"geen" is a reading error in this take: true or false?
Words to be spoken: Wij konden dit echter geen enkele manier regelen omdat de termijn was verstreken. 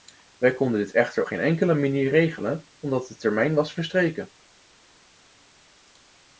false